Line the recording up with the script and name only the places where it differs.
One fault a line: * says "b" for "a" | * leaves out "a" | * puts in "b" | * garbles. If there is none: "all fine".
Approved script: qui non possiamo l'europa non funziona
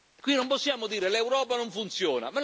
* puts in "dire"